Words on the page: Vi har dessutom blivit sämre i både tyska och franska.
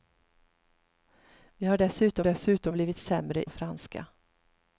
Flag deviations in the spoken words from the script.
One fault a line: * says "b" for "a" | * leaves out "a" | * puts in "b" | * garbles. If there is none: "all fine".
* puts in "dessutom"
* leaves out "i både tyska"